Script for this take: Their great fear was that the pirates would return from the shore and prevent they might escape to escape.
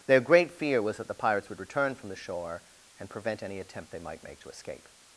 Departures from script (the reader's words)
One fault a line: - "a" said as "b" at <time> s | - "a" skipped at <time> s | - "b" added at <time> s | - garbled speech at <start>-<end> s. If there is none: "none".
- "any attempt" added at 3.4 s
- "escape" said as "make" at 4.2 s